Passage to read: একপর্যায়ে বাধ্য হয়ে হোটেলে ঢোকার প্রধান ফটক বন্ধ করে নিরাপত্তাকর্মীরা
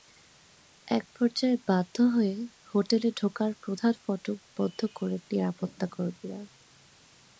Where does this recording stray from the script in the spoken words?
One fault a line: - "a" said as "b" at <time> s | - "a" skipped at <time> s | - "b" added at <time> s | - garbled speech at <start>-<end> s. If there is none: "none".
none